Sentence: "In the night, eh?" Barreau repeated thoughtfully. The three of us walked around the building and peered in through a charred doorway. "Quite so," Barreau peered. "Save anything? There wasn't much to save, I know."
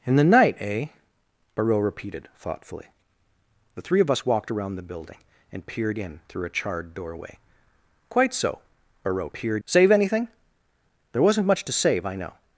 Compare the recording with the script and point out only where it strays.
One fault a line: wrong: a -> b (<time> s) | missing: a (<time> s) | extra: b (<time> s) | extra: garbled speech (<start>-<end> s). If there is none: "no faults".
no faults